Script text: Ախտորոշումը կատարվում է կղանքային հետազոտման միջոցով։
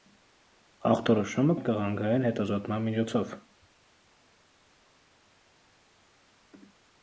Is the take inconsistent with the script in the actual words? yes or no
yes